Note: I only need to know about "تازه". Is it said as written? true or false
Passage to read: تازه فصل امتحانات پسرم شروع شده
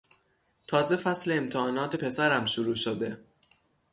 true